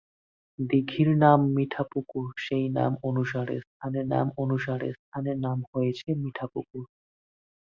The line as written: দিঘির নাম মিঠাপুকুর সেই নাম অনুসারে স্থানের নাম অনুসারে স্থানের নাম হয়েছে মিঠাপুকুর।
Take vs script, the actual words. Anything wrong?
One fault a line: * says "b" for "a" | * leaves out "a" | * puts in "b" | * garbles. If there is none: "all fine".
all fine